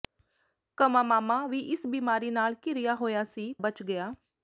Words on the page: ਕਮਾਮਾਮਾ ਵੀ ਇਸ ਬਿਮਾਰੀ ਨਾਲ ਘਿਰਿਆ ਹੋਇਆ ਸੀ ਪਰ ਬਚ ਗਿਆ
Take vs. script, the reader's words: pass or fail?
fail